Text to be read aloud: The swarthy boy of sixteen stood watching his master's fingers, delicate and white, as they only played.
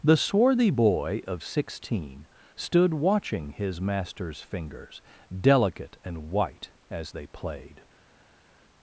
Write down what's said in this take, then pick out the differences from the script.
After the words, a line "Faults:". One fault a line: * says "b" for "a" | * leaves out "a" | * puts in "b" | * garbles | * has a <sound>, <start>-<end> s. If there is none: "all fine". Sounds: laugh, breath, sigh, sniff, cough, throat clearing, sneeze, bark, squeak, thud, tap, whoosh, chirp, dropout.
The swarthy boy of sixteen stood watching his master's fingers, delicate and white, as they played.
Faults:
* leaves out "only"